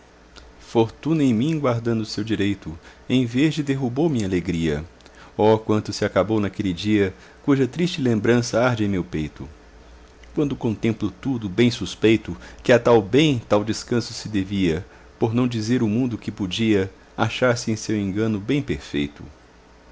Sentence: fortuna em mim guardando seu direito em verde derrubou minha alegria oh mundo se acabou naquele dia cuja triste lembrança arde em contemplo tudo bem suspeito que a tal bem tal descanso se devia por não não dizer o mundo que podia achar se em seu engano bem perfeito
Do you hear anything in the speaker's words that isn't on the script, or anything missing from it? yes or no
yes